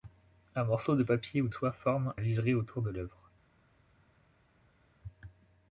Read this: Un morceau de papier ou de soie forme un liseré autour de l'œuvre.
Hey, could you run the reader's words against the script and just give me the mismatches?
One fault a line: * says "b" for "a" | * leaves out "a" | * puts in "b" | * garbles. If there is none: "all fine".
* leaves out "de"
* leaves out "un"